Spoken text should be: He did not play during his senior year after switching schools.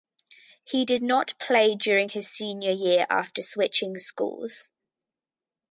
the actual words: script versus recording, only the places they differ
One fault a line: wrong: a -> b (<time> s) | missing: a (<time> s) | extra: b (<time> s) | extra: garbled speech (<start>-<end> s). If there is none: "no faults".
no faults